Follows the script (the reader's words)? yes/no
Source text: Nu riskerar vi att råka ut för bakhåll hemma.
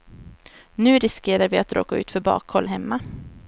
yes